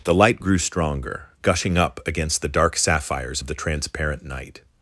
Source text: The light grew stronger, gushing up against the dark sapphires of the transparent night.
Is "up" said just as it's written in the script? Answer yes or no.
yes